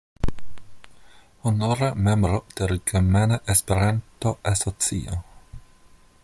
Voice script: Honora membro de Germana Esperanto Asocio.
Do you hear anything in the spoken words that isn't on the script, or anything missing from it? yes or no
no